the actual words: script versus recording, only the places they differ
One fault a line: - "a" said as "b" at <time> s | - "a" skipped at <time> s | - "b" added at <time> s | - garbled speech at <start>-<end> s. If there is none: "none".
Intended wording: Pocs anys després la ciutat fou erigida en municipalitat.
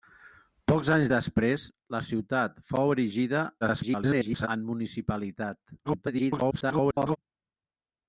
- garbled speech at 3.6-4.5 s
- garbled speech at 5.8-7.2 s